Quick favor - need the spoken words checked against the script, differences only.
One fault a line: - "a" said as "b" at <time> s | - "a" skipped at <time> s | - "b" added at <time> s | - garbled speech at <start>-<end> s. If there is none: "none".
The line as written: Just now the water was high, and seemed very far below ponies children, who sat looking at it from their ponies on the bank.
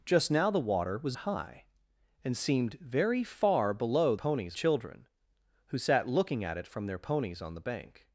none